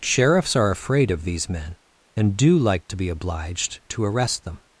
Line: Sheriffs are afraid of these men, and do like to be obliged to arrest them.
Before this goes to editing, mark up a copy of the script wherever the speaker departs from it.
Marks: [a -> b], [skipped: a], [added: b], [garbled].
Sheriffs are afraid of these men, and do like to be obliged to arrest them.